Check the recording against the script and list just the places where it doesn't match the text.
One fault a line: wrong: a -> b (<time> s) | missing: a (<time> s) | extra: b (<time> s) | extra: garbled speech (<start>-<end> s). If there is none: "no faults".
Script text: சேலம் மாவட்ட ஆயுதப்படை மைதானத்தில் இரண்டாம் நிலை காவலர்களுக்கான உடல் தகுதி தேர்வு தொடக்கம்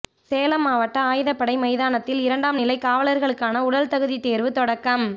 no faults